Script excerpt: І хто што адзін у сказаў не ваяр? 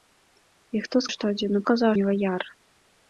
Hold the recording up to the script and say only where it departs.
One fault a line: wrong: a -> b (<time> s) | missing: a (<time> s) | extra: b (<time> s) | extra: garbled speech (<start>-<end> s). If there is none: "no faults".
no faults